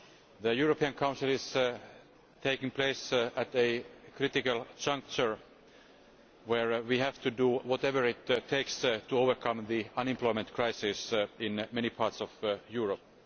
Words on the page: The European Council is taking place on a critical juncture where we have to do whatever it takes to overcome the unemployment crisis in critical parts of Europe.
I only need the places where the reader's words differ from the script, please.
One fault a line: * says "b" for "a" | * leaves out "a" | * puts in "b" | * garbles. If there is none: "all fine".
* says "at" for "on"
* says "many" for "critical"